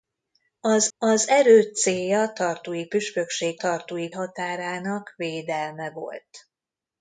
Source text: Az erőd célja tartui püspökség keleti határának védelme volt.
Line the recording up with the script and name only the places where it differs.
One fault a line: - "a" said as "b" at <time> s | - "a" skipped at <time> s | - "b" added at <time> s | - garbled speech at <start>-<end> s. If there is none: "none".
- "az" added at 1.0 s
- "keleti" said as "tartui" at 3.6 s